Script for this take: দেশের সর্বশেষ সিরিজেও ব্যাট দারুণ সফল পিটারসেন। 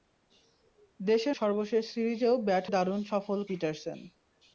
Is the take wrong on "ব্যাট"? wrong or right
right